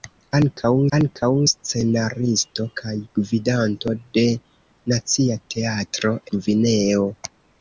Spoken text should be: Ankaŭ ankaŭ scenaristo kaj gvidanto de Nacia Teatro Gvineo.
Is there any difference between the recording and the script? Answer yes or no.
no